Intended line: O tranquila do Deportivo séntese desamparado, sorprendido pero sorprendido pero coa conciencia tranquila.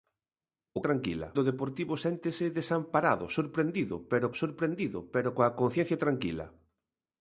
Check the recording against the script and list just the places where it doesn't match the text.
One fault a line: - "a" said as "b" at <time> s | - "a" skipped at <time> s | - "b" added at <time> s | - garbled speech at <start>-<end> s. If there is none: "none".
none